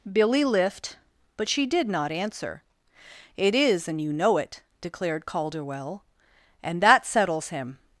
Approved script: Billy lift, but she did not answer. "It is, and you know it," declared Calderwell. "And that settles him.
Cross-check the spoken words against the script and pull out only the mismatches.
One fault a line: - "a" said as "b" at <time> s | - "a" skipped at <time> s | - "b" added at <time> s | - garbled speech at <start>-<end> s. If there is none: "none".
none